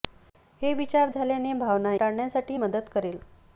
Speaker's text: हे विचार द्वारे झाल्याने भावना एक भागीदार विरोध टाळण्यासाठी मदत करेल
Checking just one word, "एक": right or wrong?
wrong